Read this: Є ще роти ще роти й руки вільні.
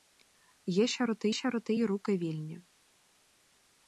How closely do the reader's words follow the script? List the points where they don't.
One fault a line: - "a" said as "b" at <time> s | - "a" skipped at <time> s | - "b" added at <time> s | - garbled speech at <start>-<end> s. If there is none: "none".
none